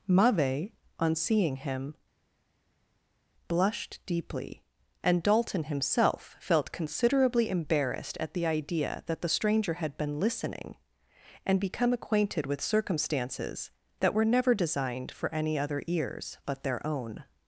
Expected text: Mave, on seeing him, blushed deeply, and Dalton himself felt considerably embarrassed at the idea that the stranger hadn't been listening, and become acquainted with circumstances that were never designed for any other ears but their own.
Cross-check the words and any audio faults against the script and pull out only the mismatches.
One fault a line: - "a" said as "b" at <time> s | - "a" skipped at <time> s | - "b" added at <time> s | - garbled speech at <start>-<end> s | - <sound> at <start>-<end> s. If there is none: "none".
- "hadn't" said as "had" at 9.7 s